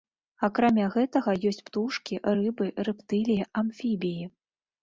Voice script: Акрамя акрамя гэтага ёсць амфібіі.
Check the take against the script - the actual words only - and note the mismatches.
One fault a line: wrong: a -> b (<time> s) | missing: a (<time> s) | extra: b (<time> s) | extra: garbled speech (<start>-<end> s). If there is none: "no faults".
missing: акрамя (0.8 s)
extra: птушкі рыбы рэптыліі (1.7 s)